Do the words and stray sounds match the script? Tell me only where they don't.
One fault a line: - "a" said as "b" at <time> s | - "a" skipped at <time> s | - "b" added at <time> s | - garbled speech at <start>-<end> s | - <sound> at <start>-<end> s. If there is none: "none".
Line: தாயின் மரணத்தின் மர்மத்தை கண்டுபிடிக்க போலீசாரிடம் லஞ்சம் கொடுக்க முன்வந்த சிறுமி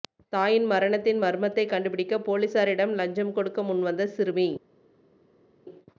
none